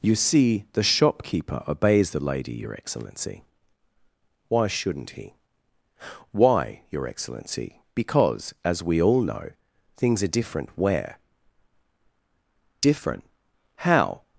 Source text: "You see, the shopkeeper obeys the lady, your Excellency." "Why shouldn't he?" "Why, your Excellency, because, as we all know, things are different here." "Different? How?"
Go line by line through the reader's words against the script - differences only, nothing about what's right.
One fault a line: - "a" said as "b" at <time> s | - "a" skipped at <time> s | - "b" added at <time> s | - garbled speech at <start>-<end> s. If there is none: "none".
- "here" said as "where" at 10.8 s